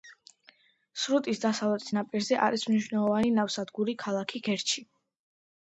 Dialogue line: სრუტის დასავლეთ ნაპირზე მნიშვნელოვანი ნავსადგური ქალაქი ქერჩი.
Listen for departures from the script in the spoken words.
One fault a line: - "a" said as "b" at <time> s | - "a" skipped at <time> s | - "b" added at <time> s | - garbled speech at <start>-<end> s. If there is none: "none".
- "არის" added at 2.5 s